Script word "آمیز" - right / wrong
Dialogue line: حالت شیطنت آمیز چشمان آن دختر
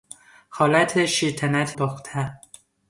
wrong